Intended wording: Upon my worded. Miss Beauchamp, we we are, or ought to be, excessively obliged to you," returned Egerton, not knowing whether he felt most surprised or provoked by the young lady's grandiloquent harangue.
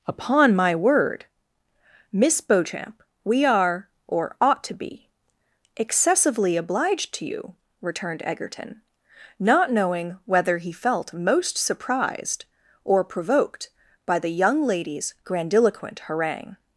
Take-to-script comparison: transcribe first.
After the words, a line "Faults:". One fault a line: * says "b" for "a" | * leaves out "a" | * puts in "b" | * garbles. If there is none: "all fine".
Upon my word. Miss Beauchamp, we are, or ought to be, excessively obliged to you," returned Egerton, not knowing whether he felt most surprised or provoked by the young lady's grandiloquent harangue.
Faults:
* says "word" for "worded"
* leaves out "we"